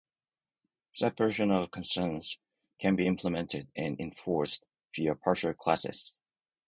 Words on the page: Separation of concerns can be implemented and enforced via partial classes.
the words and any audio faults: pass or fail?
pass